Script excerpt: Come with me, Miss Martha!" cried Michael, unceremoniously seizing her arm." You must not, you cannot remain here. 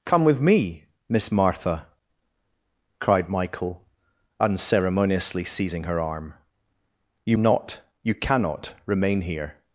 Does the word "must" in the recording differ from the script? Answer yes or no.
yes